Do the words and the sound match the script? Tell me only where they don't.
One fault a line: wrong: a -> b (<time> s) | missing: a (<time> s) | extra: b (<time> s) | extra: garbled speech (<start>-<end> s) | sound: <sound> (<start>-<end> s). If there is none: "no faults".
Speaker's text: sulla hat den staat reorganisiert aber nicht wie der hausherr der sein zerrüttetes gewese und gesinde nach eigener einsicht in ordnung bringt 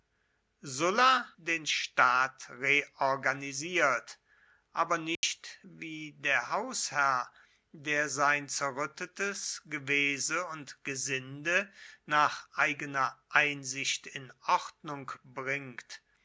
missing: hat (1.3 s)
sound: dropout (5.2-5.2 s)